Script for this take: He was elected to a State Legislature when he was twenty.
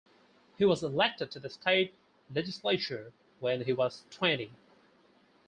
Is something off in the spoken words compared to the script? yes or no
yes